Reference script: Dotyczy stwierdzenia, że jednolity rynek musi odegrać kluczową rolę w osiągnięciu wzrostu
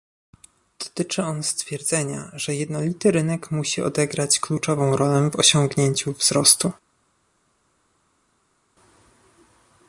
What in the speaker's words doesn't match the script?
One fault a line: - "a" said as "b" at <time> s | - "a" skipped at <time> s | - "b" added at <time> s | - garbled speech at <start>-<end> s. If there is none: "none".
- "on" added at 1.2 s